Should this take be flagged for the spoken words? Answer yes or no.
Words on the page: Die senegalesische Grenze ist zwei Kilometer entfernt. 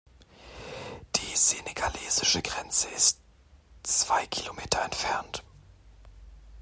no